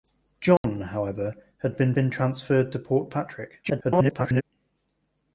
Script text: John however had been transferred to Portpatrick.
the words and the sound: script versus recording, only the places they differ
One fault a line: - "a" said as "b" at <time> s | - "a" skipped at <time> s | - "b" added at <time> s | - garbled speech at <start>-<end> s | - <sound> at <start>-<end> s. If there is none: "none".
- dropout at 0.6-0.6 s
- "been" added at 1.9 s
- garbled speech at 3.6-4.4 s